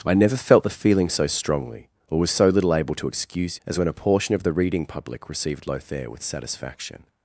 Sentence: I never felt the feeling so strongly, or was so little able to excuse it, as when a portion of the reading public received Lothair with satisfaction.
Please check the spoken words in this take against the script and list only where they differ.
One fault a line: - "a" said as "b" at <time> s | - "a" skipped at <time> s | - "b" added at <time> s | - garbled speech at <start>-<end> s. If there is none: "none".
- "it" skipped at 3.6 s